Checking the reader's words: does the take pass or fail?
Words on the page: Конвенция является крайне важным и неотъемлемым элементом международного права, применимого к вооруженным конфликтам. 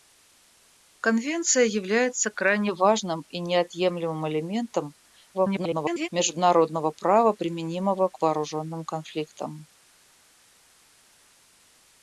fail